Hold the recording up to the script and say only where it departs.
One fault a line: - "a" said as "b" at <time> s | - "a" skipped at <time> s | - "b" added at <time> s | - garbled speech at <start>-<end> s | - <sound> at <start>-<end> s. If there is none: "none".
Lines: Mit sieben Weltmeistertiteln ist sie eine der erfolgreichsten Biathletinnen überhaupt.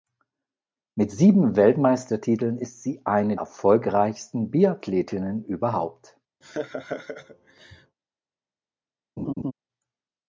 - "der" skipped at 3.4 s
- laugh at 6.4-8.0 s
- laugh at 9.2-9.5 s